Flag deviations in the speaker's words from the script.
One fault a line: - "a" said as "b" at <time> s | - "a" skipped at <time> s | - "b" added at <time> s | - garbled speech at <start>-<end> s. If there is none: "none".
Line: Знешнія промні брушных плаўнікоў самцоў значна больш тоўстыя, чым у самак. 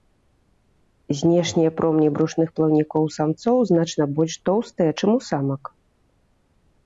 none